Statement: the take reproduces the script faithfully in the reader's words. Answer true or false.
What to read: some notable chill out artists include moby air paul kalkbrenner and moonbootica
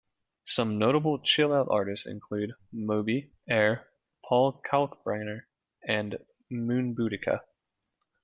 true